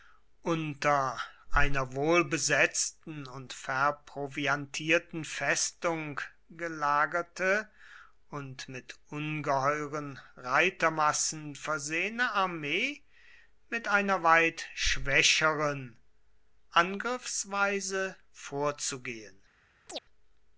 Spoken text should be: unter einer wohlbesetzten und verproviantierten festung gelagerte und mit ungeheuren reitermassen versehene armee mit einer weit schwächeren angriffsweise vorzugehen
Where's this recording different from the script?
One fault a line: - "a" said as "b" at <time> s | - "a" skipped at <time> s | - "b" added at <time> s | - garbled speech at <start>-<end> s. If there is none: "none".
none